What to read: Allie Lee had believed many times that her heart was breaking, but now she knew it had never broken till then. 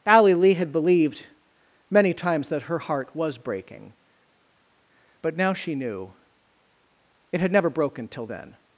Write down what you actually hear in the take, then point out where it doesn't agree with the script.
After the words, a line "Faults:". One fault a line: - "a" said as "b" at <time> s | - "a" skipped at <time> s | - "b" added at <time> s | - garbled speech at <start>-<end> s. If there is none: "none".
Allie Lee had believed many times that her heart was breaking, but now she knew it had never broken till then.
Faults:
none